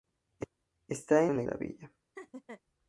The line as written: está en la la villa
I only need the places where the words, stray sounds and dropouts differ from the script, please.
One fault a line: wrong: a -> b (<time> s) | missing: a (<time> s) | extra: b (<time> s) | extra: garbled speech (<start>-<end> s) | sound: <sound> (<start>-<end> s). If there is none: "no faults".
sound: laugh (2.2-2.6 s)